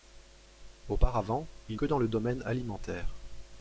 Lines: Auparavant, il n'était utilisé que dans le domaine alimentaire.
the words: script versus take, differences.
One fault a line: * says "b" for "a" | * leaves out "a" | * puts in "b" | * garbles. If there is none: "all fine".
* leaves out "n'était utilisé"